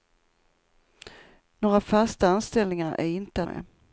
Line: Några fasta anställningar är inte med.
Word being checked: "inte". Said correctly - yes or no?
yes